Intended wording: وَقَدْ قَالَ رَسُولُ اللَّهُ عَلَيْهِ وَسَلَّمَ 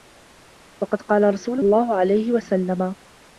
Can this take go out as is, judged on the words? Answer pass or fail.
pass